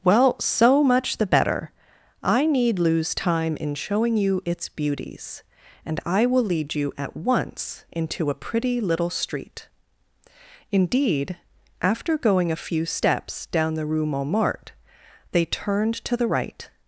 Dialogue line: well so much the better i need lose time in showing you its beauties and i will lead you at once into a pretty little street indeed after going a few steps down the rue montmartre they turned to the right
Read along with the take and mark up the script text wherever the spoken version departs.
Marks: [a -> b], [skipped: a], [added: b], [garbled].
well so much the better i need lose time in showing you its beauties and i will lead you at once into a pretty little street indeed after going a few steps down the rue montmartre they turned to the right